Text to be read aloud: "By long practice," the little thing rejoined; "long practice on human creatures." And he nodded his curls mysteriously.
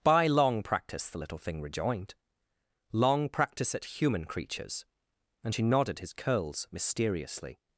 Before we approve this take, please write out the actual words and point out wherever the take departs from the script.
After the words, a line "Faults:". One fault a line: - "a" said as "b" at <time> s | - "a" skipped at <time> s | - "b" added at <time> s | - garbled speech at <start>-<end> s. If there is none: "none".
"By long practice," the little thing rejoined; "long practice at human creatures." And she nodded his curls mysteriously.
Faults:
- "on" said as "at" at 3.7 s
- "he" said as "she" at 5.5 s